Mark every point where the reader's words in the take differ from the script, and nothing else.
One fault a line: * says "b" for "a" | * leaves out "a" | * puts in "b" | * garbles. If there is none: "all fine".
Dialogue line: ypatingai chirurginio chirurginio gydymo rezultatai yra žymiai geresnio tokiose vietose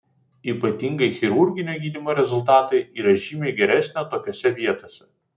* leaves out "chirurginio"